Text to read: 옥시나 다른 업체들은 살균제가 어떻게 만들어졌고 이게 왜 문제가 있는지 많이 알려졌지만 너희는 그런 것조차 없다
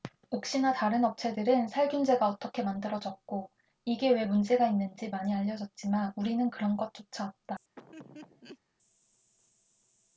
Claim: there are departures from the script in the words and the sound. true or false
true